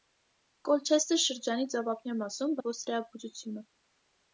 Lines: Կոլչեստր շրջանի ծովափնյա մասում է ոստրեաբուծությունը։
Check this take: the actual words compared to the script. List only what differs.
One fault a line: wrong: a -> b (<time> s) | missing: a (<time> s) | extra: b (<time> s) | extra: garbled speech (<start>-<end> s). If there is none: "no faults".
no faults